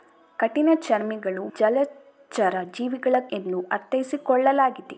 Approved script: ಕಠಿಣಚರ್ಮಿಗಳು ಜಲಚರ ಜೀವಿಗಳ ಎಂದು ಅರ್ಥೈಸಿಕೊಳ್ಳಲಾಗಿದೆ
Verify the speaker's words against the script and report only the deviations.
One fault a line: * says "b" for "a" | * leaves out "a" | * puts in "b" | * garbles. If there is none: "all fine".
all fine